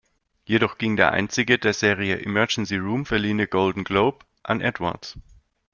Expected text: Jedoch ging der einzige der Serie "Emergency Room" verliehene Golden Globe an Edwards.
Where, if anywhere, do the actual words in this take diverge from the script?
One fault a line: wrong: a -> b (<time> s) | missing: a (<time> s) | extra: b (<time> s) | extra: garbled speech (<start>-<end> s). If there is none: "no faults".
no faults